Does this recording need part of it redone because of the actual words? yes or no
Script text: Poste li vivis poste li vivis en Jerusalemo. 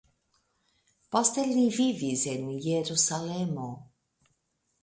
yes